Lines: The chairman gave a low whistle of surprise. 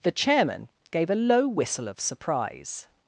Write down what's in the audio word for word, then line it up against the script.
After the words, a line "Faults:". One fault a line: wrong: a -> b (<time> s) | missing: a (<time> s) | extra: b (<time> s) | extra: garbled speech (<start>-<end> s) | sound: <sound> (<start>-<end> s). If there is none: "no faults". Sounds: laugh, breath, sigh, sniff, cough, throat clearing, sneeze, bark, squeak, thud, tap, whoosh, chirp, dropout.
The chairman gave a low whistle of surprise.
Faults:
no faults